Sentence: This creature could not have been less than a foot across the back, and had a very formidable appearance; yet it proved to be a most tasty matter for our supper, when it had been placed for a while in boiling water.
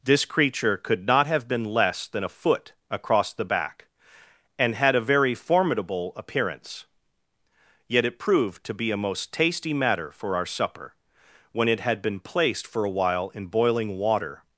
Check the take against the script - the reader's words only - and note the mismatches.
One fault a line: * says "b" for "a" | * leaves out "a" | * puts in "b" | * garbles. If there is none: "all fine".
all fine